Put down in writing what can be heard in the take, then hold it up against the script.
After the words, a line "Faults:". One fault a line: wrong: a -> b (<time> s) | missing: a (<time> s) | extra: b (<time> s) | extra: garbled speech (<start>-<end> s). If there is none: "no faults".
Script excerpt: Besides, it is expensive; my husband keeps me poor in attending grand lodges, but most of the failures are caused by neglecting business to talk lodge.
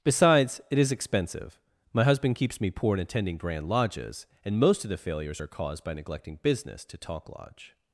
Besides, it is expensive; my husband keeps me poor in attending grand lodges, and most of the failures are caused by neglecting business to talk lodge.
Faults:
wrong: but -> and (4.4 s)